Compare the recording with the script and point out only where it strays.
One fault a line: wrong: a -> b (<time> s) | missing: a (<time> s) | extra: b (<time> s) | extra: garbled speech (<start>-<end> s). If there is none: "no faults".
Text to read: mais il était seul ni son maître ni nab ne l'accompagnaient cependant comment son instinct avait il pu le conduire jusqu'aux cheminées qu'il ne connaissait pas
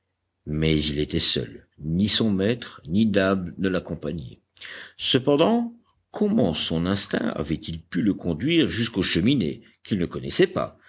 no faults